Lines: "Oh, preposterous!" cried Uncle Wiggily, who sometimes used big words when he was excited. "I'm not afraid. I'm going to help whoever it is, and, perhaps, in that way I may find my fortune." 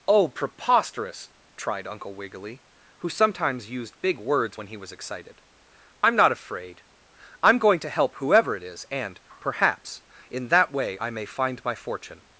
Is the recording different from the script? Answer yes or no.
yes